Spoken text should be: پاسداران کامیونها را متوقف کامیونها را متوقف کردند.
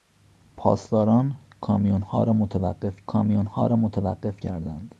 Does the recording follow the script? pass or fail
pass